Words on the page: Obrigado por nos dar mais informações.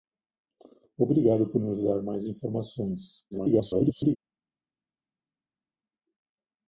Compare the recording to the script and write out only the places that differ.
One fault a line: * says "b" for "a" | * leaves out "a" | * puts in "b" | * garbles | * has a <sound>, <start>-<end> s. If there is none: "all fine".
* garbles